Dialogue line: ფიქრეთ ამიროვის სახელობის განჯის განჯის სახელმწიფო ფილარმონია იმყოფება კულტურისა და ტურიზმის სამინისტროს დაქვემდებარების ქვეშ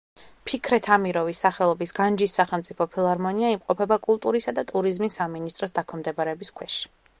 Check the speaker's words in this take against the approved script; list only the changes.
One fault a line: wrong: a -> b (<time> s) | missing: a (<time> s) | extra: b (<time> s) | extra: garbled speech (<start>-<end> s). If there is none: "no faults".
missing: განჯის (2.4 s)